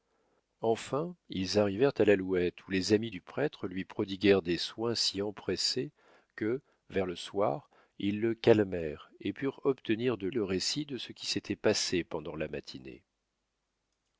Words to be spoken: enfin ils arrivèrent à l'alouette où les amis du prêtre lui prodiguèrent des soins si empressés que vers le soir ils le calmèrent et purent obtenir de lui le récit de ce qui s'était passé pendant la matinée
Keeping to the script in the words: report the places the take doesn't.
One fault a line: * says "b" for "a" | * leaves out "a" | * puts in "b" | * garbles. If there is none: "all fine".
* leaves out "lui"